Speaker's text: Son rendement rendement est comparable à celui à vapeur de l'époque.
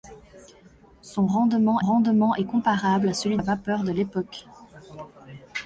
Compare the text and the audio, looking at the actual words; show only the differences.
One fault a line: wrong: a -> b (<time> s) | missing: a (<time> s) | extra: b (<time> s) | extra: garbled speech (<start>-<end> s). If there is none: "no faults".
no faults